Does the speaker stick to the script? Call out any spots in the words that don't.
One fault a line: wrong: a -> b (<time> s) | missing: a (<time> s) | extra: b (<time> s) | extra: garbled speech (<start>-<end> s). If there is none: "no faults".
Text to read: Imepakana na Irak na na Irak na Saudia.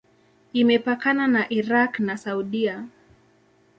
missing: na Irak na (2.2 s)